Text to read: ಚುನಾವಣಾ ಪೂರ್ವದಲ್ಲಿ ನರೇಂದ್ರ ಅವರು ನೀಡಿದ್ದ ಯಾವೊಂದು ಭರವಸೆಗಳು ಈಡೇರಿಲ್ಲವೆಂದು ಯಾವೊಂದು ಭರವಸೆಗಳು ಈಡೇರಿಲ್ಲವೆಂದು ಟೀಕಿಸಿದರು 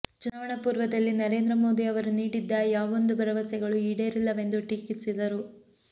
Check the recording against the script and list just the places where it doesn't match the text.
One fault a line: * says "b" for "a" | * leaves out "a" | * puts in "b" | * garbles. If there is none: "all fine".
* puts in "ಮೋದಿ"
* leaves out "ಯಾವೊಂದು ಭರವಸೆಗಳು ಈಡೇರಿಲ್ಲವೆಂದು"